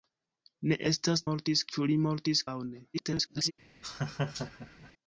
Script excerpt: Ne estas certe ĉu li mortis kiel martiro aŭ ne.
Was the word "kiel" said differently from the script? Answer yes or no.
yes